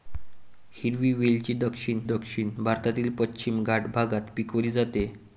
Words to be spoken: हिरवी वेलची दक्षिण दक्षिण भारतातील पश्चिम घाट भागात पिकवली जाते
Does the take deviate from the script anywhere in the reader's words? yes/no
no